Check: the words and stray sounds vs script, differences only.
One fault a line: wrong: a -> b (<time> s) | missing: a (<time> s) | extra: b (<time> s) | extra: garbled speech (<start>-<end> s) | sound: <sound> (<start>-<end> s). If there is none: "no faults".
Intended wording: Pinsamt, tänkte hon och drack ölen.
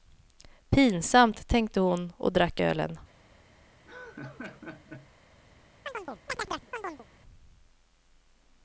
sound: laugh (3.9-5.1 s)
sound: chirp (5.9-7.1 s)